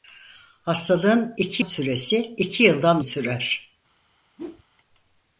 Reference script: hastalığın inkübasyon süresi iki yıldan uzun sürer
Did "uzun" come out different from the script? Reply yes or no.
yes